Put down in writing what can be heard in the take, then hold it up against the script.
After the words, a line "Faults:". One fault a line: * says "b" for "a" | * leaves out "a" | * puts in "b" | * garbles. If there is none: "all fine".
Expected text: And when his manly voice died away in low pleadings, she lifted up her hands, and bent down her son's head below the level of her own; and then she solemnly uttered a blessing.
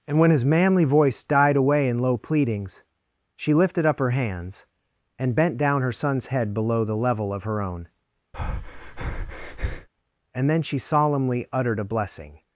And when his manly voice died away in low pleadings, she lifted up her hands, and bent down her son's head below the level of her own; and then she solemnly uttered a blessing.
Faults:
all fine